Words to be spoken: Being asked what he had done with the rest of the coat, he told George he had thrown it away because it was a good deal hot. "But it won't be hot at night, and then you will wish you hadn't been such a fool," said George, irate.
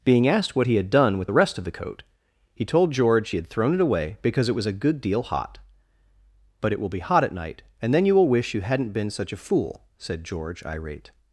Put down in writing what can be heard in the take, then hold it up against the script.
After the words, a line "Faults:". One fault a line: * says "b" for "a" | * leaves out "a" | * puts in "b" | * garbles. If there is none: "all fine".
Being asked what he had done with the rest of the coat, he told George he had thrown it away because it was a good deal hot. "But it will be hot at night, and then you will wish you hadn't been such a fool," said George, irate.
Faults:
* says "will" for "won't"